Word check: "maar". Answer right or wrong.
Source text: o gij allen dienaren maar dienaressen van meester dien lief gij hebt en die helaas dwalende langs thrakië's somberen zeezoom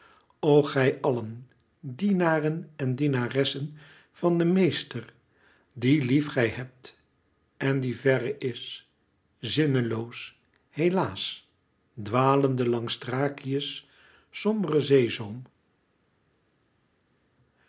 wrong